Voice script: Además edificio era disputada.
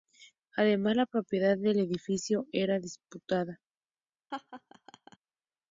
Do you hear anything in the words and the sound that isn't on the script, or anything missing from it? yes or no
yes